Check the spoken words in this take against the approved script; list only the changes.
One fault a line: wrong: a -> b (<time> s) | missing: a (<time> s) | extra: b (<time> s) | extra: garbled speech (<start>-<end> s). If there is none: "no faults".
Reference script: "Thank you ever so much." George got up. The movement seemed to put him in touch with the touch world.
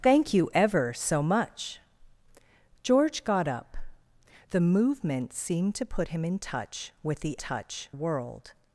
no faults